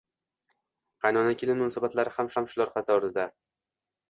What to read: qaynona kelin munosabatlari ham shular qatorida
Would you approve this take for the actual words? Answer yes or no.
no